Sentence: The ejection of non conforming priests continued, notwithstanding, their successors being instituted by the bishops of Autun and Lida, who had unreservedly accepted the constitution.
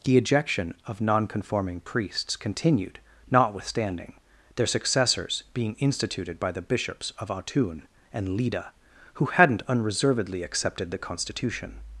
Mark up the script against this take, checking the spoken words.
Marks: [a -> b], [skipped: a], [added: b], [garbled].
The ejection of non conforming priests continued, notwithstanding, their successors being instituted by the bishops of Autun and Lida, who [had -> hadn't] unreservedly accepted the constitution.